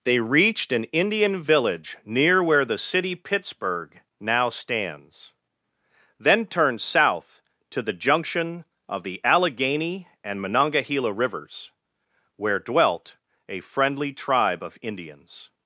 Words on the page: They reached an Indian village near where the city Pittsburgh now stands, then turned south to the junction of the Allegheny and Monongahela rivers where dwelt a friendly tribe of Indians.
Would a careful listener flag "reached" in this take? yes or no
no